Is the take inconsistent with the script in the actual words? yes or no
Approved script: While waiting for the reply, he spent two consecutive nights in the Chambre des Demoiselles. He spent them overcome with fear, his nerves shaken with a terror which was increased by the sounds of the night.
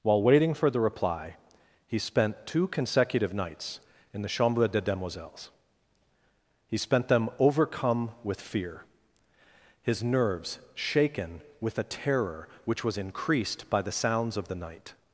no